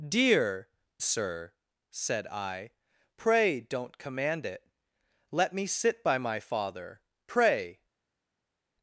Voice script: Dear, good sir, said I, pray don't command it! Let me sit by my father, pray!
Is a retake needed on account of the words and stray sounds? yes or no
yes